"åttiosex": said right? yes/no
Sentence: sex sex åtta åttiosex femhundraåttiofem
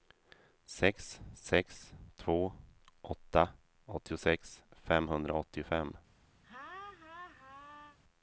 yes